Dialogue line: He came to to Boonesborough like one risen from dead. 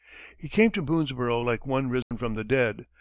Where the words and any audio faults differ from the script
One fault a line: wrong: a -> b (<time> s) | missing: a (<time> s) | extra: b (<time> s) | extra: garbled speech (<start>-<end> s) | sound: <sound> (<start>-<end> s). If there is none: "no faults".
missing: to (0.8 s)
sound: dropout (2.0-2.1 s)
extra: the (2.3 s)